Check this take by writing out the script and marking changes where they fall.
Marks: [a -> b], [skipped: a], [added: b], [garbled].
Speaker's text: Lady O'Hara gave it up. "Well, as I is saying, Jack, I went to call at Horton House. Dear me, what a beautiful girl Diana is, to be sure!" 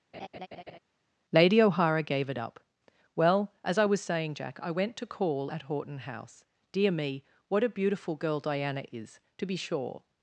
Lady O'Hara gave it up. "Well, as I [is -> was] saying, Jack, I went to call at Horton House. Dear me, what a beautiful girl Diana is, to be sure!"